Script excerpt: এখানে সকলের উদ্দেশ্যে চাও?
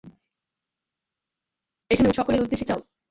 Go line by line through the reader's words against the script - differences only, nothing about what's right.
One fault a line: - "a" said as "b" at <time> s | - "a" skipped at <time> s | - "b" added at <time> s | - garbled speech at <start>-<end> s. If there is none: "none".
none